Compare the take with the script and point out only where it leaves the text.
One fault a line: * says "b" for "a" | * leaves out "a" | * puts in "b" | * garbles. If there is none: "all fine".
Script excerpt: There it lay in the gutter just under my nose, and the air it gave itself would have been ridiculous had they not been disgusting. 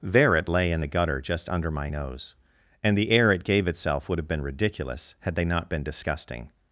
all fine